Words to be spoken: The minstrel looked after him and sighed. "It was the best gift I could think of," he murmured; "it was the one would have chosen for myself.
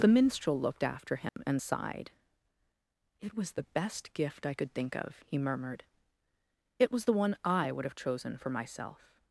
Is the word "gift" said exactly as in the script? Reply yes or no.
yes